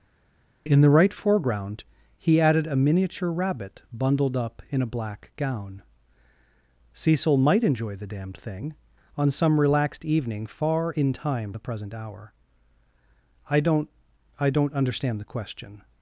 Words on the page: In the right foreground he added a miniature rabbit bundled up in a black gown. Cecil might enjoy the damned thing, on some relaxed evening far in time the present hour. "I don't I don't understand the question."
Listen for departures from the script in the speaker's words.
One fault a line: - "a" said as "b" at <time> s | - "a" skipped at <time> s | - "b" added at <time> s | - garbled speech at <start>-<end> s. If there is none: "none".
none